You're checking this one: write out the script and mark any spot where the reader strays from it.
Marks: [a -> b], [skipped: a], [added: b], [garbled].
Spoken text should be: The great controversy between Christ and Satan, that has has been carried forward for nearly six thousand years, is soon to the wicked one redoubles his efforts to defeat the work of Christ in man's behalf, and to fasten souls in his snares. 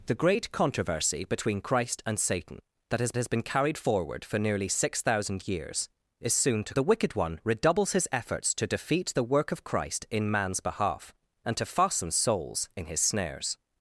The great controversy between Christ and Satan, that has has been carried forward for nearly six thousand years, is soon to the wicked one redoubles his efforts to defeat the work of Christ in man's behalf, and to fasten souls in his snares.